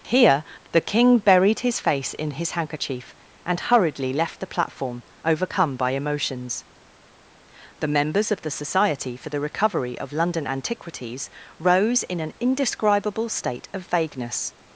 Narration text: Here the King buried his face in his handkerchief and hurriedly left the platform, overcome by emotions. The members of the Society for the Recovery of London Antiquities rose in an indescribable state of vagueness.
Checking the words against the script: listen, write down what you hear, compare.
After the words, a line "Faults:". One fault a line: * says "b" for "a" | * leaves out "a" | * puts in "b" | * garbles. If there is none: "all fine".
Here the King buried his face in his handkerchief and hurriedly left the platform, overcome by emotions. The members of the Society for the Recovery of London Antiquities rose in an indescribable state of vagueness.
Faults:
all fine